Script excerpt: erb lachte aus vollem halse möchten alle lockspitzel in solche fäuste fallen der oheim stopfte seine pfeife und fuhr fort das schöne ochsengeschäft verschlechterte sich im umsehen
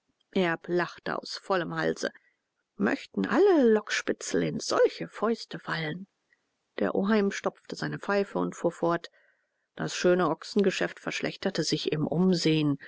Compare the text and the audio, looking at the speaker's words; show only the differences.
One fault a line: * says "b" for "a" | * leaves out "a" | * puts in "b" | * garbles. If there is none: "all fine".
all fine